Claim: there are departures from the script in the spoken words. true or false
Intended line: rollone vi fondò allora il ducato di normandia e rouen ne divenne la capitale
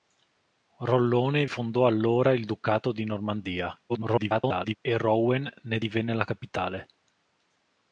true